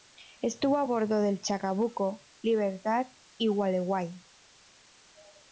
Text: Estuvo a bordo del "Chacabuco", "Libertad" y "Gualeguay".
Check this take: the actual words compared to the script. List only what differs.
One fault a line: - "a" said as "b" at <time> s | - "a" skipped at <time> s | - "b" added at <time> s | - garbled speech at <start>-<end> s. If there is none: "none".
none